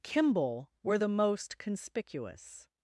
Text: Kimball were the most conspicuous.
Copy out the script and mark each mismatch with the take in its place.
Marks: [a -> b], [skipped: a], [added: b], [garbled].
Kimball were the most conspicuous.